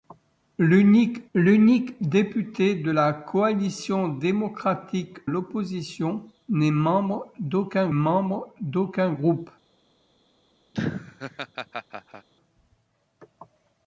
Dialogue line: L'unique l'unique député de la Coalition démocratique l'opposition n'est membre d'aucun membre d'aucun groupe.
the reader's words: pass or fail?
pass